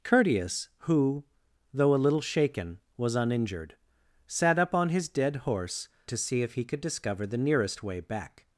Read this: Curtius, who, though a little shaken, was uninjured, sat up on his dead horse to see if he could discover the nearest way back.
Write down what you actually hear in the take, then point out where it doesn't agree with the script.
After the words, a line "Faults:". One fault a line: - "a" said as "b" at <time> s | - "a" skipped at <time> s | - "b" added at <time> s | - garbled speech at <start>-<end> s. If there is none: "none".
Curtius, who, though a little shaken, was uninjured, sat up on his dead horse to see if he could discover the nearest way back.
Faults:
none